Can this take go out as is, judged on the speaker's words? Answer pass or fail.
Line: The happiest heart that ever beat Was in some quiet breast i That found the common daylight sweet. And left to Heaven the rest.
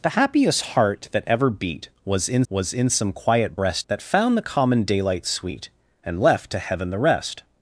fail